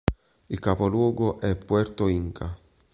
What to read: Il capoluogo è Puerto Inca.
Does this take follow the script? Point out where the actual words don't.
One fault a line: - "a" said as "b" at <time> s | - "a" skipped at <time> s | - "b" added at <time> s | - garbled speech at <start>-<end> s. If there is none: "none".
none